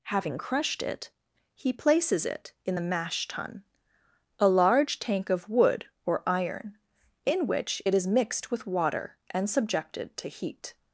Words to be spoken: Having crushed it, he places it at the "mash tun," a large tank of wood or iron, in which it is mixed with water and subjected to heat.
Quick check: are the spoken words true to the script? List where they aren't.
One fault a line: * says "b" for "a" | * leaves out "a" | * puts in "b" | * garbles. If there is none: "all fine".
* says "in" for "at"